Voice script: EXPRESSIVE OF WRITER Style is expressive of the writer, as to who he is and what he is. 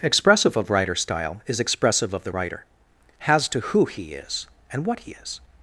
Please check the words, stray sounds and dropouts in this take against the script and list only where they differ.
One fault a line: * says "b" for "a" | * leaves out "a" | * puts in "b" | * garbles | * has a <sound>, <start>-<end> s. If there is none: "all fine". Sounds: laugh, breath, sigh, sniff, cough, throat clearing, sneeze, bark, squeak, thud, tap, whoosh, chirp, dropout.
* says "has" for "as"